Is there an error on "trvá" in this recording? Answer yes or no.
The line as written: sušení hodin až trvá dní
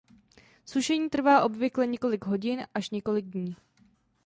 yes